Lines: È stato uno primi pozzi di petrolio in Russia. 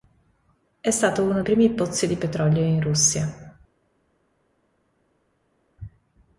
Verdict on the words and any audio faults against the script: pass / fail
pass